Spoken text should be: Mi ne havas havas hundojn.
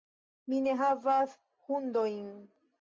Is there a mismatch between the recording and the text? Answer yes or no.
yes